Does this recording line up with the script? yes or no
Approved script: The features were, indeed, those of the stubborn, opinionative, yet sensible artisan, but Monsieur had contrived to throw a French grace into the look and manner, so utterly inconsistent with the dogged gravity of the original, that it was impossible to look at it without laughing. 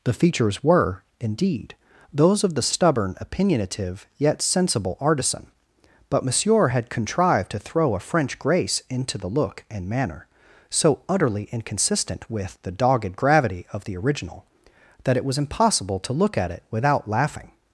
yes